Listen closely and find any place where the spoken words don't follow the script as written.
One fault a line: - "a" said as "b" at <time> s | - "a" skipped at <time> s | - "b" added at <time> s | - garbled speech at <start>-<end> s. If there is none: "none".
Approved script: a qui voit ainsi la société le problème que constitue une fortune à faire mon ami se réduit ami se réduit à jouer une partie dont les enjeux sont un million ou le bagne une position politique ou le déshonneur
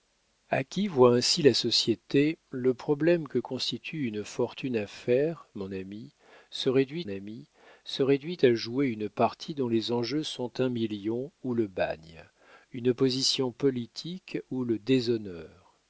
none